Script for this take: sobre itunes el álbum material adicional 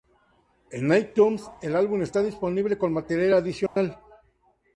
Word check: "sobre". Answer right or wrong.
wrong